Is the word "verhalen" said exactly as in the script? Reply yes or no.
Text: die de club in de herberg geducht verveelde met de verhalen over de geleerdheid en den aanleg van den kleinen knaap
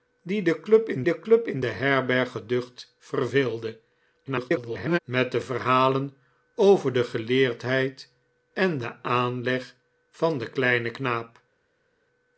yes